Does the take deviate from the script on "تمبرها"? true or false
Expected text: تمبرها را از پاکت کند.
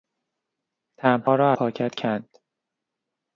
false